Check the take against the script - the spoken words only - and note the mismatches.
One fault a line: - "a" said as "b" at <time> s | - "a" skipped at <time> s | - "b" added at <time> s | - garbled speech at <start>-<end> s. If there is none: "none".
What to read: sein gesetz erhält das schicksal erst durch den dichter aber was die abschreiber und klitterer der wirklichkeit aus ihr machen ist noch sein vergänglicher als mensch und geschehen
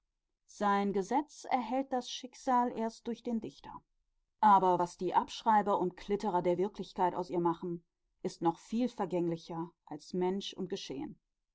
- "sein" said as "viel" at 8.6 s